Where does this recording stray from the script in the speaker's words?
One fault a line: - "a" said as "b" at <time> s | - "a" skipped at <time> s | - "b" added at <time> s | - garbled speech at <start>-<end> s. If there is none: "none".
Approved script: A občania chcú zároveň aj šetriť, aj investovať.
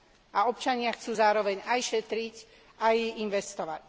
none